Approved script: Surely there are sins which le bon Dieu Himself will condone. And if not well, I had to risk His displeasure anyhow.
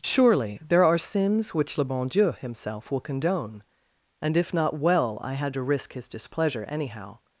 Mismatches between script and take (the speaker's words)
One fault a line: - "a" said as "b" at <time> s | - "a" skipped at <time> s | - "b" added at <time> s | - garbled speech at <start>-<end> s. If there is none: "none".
none